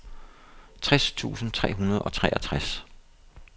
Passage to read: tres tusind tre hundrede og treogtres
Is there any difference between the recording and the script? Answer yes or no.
no